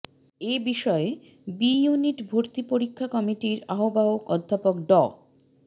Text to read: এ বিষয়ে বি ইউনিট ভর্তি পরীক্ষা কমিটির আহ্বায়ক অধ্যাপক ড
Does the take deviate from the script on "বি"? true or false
false